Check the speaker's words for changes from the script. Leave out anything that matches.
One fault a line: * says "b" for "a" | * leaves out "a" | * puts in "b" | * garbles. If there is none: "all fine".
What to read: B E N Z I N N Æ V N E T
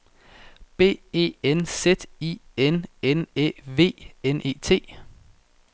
all fine